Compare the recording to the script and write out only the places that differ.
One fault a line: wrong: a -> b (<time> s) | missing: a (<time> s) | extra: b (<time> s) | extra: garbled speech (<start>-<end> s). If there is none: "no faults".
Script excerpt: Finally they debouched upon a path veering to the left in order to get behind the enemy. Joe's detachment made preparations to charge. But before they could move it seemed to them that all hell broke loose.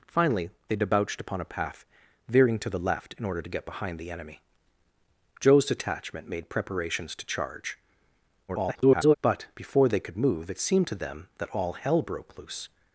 extra: garbled speech (8.5-9.1 s)